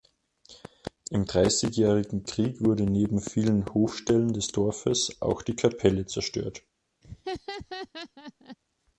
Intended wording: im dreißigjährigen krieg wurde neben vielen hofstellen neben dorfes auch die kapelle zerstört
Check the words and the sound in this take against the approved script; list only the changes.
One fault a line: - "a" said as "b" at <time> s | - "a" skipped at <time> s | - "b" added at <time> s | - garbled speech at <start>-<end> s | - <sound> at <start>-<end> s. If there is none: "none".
- "neben" said as "des" at 4.3 s
- laugh at 7.0-8.6 s